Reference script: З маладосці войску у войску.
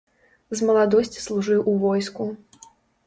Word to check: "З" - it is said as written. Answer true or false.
true